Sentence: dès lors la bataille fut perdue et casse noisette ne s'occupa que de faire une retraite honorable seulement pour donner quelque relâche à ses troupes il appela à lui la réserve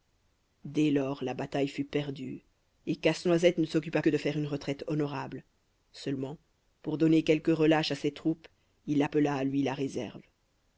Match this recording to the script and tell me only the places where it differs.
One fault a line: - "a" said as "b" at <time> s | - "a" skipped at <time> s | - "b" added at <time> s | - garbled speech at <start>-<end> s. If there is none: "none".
none